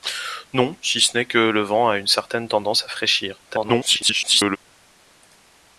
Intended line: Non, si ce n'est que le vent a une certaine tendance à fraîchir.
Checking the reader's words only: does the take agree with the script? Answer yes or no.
no